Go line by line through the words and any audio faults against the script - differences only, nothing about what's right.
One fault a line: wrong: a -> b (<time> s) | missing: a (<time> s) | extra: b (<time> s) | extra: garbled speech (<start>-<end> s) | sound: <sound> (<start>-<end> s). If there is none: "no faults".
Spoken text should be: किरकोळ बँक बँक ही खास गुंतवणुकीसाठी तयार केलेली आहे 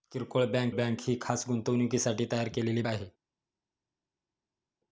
no faults